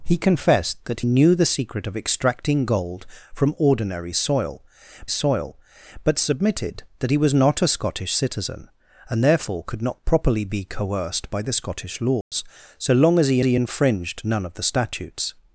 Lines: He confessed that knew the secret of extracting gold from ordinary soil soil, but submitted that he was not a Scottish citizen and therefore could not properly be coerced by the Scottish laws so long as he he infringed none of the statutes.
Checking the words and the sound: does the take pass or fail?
fail